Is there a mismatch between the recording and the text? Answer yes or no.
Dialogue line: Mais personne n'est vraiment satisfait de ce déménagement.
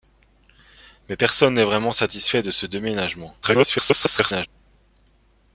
yes